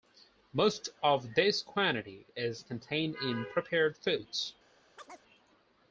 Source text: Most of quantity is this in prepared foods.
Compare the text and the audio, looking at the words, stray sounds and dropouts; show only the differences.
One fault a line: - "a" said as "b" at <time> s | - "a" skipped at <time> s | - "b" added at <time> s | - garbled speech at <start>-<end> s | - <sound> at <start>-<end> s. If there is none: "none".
- "this" added at 1.4 s
- "this" said as "contained" at 2.6 s
- chirp at 5.0-5.2 s